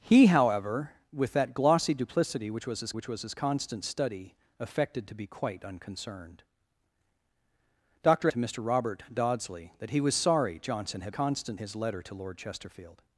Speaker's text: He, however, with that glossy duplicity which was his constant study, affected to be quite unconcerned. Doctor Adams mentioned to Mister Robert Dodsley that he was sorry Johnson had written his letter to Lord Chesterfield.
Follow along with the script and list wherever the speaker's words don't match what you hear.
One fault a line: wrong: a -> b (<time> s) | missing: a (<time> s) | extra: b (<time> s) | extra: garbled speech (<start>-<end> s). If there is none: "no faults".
extra: which was his (2.9 s)
missing: Adams mentioned (8.3 s)
wrong: written -> constant (11.1 s)